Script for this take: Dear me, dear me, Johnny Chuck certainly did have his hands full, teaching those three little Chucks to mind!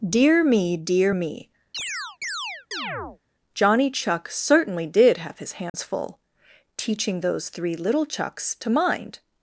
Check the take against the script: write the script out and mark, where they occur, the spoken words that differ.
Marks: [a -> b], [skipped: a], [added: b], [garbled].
Dear me, dear me, Johnny Chuck certainly did have his hands full, teaching those three little Chucks to mind!